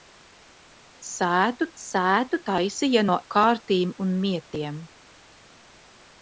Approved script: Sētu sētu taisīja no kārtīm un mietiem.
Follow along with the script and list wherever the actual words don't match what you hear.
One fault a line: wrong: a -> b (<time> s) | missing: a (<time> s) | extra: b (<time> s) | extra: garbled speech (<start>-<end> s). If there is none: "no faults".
no faults